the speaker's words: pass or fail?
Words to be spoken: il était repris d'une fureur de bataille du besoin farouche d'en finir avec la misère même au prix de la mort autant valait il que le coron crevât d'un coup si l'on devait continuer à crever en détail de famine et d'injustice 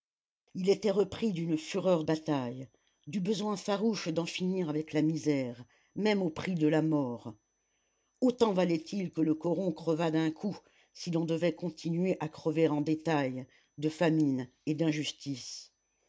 fail